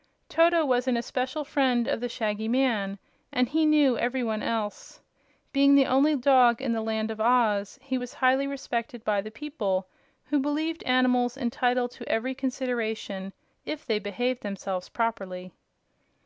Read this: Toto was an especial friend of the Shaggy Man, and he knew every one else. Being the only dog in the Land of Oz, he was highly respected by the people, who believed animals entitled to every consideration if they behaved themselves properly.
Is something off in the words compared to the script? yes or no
no